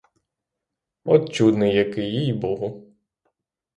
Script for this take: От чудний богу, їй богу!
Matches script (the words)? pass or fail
fail